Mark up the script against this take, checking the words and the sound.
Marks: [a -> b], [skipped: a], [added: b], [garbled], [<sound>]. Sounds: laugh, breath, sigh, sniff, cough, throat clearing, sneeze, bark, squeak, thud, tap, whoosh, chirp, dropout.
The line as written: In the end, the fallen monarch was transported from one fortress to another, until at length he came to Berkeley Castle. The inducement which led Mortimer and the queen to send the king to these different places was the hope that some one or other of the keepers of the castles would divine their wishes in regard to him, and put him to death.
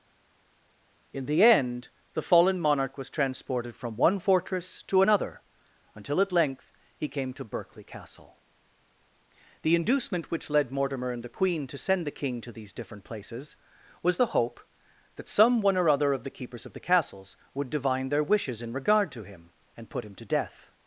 In the end, the fallen monarch was transported from one fortress to another, until at length he came to Berkeley Castle. The inducement which led Mortimer and the queen to send the king to these different places was the hope that some one or other of the keepers of the castles would divine their wishes in regard to him, and put him to death.